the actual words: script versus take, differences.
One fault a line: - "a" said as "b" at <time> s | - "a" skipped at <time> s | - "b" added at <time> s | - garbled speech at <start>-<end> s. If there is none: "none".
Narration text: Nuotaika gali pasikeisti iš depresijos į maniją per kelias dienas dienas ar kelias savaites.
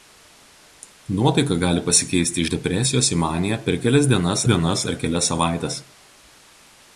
none